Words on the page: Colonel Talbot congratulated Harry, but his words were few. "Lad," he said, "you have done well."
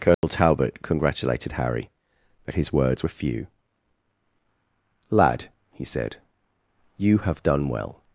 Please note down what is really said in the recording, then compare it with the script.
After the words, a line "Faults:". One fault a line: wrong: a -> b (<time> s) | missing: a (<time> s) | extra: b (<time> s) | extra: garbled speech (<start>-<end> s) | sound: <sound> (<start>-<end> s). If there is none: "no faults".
Colonel Talbot congratulated Harry, but his words were few. "Lad," he said, "you have done well."
Faults:
sound: dropout (0.1-0.2 s)